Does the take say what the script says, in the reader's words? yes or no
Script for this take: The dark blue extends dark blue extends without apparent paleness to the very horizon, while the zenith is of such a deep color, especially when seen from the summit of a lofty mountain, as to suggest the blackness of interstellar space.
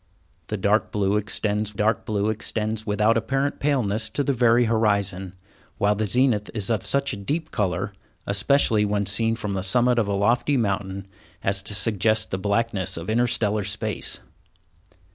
yes